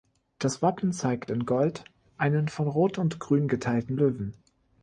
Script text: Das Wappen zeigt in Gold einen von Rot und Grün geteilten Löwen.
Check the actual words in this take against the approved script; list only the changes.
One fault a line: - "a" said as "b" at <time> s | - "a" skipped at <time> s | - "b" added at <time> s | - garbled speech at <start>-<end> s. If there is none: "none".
none